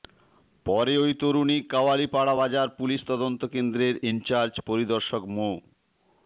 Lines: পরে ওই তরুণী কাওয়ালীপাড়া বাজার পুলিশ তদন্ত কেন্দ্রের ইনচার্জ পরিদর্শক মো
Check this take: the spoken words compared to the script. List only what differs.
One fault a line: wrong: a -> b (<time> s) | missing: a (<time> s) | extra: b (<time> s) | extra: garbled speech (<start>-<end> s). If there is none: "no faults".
no faults